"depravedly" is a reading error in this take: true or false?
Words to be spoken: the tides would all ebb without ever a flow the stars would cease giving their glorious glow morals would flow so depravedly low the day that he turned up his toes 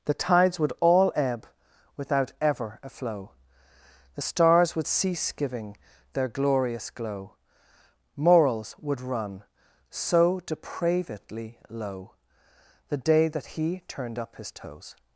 false